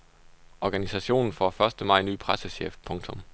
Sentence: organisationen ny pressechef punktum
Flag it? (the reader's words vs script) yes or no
yes